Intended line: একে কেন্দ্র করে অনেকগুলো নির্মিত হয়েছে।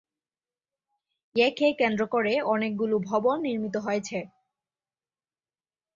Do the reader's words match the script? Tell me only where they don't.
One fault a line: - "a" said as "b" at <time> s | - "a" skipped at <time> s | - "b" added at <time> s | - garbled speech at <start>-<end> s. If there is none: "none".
- "ভবন" added at 3.1 s